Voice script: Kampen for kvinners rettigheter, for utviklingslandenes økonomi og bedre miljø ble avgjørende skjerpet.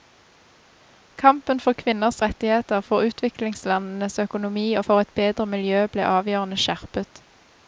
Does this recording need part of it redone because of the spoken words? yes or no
yes